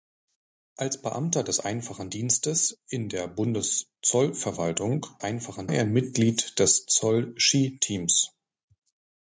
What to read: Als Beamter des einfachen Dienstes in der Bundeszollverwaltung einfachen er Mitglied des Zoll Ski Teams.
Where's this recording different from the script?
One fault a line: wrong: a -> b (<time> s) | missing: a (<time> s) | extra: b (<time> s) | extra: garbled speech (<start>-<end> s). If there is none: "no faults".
no faults